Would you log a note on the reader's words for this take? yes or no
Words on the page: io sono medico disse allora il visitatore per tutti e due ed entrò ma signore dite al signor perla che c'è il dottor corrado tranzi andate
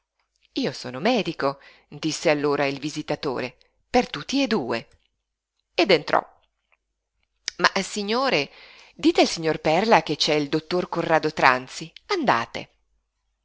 no